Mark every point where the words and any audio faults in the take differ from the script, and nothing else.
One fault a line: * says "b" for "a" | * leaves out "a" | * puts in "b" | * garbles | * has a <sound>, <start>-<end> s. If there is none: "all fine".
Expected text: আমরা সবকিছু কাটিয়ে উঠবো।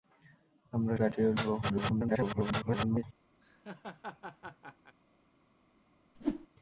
* leaves out "সবকিছু"
* garbles
* has a laugh, 3.4-5.0 s
* has a whoosh, 6.2-6.5 s